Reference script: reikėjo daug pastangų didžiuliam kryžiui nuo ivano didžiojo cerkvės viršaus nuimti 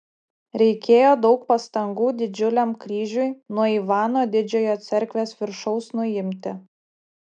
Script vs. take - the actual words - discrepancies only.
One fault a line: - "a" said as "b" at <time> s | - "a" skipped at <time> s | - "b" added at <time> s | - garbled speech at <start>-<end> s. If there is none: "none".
none